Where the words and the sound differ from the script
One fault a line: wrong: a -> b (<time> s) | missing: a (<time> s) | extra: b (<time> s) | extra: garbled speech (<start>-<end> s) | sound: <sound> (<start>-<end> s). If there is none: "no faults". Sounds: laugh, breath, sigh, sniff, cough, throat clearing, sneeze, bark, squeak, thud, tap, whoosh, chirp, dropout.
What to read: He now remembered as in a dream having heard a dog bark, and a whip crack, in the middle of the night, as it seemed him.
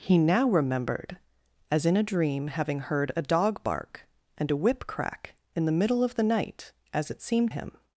no faults